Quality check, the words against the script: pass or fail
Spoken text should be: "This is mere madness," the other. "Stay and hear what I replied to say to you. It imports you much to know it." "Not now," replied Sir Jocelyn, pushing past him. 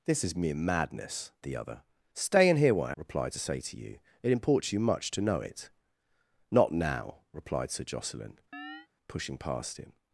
pass